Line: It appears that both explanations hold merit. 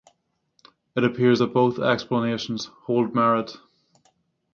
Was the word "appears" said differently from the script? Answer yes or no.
no